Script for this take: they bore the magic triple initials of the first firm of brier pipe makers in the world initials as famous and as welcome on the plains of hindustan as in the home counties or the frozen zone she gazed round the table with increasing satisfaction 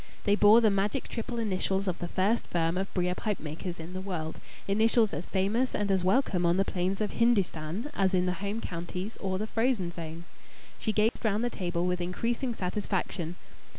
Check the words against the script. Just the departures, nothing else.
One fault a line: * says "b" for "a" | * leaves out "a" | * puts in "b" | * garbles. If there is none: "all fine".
all fine